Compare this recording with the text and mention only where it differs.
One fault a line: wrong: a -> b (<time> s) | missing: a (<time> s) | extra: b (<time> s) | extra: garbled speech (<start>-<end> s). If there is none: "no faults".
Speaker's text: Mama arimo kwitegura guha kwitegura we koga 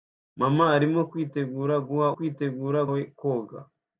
no faults